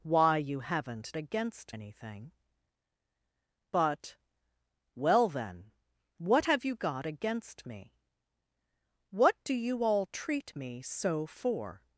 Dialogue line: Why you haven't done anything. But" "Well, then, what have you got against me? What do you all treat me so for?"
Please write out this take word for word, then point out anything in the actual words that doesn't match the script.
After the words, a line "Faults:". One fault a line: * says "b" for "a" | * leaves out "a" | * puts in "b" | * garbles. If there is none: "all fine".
Why you haven't against anything. But" "Well, then, what have you got against me? What do you all treat me so for?"
Faults:
* says "against" for "done"